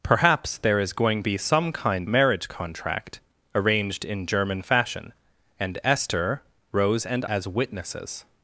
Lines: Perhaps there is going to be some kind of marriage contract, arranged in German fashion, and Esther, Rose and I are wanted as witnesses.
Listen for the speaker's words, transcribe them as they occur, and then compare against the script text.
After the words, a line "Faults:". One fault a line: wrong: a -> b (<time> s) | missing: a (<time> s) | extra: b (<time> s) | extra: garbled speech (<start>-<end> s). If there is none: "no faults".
Perhaps there is going be some kind marriage contract, arranged in German fashion, and Esther, Rose and as witnesses.
Faults:
missing: to (1.2 s)
missing: of (2.1 s)
missing: I are wanted (7.2 s)